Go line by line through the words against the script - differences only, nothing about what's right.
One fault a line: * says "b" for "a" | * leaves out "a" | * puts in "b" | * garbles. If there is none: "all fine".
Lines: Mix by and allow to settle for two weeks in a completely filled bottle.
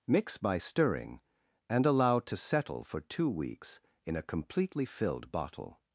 * puts in "stirring"